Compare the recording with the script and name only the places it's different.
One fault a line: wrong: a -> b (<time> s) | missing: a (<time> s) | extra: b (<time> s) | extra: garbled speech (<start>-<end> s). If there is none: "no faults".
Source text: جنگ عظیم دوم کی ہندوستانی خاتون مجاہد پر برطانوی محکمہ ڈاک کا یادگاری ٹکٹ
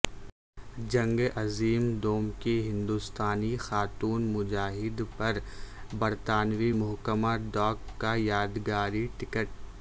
no faults